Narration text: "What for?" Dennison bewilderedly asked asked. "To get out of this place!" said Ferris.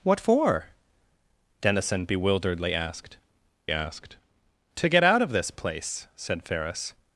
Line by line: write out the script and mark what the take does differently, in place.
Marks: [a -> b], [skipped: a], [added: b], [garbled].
"What for?" Dennison bewilderedly asked asked. "To get out of this place!" said Ferris.